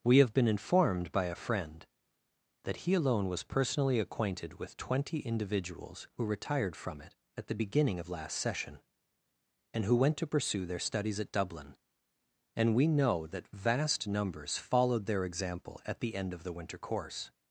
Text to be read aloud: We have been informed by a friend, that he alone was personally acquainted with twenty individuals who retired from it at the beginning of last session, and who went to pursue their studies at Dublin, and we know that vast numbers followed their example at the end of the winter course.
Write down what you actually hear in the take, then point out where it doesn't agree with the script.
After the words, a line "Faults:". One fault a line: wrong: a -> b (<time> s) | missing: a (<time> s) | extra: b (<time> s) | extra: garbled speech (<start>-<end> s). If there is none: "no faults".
We have been informed by a friend, that he alone was personally acquainted with twenty individuals who retired from it at the beginning of last session, and who went to pursue their studies at Dublin, and we know that vast numbers followed their example at the end of the winter course.
Faults:
no faults